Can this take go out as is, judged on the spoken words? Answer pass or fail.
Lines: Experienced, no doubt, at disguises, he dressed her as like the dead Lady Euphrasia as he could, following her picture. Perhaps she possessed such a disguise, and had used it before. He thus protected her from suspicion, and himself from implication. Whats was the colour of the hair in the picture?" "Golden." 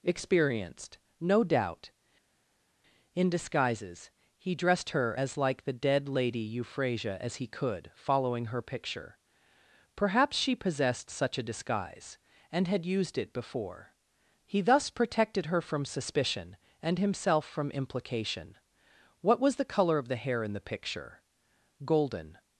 fail